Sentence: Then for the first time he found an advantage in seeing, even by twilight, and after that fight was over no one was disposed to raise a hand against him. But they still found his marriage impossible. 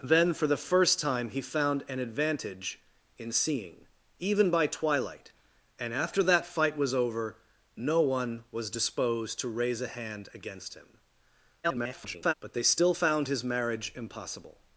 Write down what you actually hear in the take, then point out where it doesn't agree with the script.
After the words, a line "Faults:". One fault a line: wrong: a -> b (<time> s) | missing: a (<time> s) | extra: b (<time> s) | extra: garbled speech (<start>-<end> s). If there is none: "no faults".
Then for the first time he found an advantage in seeing, even by twilight, and after that fight was over no one was disposed to raise a hand against him. [garbled] But they still found his marriage impossible.
Faults:
extra: garbled speech (11.6-12.3 s)